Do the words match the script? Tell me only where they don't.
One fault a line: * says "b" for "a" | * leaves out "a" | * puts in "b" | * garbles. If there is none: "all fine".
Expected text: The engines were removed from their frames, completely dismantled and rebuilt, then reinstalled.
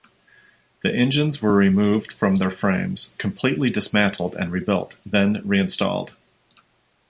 all fine